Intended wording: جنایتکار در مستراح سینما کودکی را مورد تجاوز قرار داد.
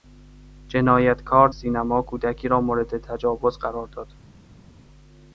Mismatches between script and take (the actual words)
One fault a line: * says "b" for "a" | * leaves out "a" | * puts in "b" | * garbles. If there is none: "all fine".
* leaves out "در مستراح"